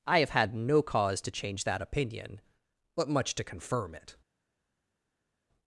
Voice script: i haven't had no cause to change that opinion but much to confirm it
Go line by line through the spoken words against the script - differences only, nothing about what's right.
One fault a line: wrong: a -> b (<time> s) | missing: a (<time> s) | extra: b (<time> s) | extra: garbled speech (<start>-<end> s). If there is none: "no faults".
wrong: haven't -> have (0.2 s)